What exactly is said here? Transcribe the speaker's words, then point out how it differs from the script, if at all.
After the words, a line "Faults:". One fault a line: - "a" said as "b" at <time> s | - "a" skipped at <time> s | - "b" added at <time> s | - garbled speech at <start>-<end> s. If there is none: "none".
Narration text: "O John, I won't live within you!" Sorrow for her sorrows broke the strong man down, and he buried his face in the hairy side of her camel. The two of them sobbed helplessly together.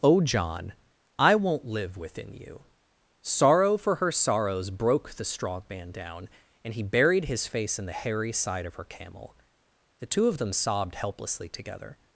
"O John, I won't live within you!" Sorrow for her sorrows broke the strong man down, and he buried his face in the hairy side of her camel. The two of them sobbed helplessly together.
Faults:
none